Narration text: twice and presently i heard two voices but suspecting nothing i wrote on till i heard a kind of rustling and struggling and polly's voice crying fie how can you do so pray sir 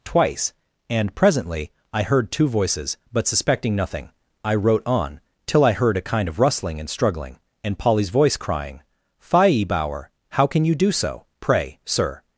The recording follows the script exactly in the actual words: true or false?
false